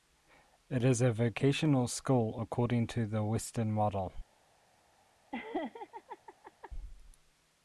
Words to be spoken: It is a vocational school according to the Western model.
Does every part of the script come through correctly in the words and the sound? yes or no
no